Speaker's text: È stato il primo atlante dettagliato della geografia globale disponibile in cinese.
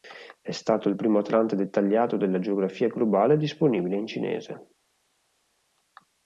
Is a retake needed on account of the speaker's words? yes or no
no